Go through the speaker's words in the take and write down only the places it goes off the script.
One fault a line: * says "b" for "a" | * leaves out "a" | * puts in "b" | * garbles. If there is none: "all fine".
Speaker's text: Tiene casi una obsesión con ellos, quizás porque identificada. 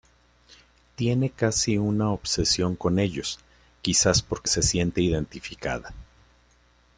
* puts in "se siente"